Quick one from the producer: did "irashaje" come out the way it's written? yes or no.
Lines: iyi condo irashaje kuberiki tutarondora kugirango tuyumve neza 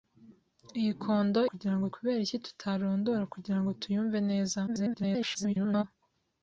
no